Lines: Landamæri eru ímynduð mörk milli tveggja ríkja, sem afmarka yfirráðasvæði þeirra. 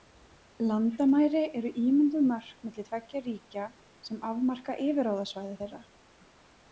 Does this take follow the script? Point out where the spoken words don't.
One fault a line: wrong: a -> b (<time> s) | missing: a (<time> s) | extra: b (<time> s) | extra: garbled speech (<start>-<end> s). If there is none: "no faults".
no faults